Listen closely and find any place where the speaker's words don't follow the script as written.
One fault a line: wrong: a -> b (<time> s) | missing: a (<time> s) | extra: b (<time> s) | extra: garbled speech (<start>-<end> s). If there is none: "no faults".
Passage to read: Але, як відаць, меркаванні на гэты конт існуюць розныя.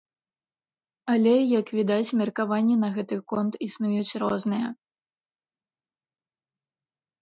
no faults